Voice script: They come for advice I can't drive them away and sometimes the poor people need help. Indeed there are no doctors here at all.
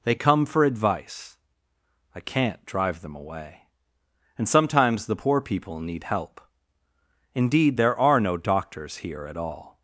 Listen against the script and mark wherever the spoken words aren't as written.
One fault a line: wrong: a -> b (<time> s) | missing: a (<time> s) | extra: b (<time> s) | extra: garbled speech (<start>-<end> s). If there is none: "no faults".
no faults